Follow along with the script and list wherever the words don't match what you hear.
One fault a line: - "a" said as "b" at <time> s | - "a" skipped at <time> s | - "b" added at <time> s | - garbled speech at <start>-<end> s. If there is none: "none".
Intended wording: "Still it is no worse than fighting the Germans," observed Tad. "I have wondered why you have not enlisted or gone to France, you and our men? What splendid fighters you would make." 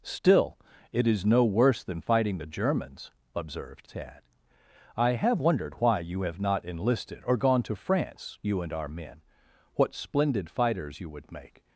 none